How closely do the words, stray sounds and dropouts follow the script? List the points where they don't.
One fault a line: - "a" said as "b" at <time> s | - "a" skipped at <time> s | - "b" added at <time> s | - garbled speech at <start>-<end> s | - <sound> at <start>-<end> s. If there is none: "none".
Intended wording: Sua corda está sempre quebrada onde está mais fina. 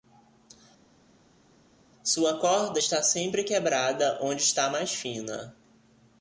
none